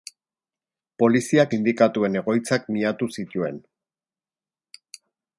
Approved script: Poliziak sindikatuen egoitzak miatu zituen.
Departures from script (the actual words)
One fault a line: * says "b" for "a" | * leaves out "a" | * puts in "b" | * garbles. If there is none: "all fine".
all fine